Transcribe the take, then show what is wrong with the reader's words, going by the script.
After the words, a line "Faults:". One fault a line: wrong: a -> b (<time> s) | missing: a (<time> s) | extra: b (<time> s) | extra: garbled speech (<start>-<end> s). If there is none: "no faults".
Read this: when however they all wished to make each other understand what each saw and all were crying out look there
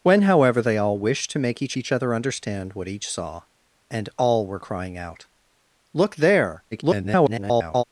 when however they all wished to make each each other understand what each saw and all were crying out look there [garbled]
Faults:
extra: each (1.8 s)
extra: garbled speech (6.7-7.8 s)